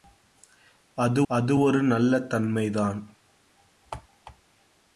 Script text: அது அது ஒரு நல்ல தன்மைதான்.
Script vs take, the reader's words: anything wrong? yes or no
no